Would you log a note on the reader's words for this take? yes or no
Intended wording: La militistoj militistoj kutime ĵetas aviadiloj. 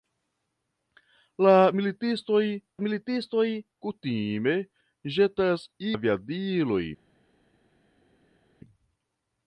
no